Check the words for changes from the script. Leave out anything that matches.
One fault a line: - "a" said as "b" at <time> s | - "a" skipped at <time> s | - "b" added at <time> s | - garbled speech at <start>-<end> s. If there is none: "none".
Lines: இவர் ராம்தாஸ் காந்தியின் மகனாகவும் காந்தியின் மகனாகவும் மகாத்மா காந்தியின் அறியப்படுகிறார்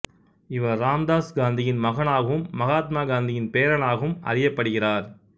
- "காந்தியின் மகனாகவும்" skipped at 2.5 s
- "பேரனாகவும்" added at 3.5 s